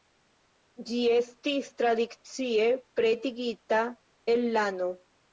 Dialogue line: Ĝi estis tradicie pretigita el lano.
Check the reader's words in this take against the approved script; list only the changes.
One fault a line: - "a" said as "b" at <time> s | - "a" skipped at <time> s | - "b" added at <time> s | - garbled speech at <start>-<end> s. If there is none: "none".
none